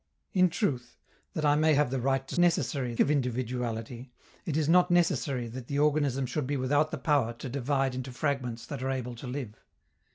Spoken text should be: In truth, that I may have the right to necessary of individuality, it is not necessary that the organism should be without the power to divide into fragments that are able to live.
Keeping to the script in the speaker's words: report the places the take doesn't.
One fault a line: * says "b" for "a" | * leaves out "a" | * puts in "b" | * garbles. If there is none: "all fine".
all fine